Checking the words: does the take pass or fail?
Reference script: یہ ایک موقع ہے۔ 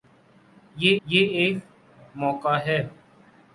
fail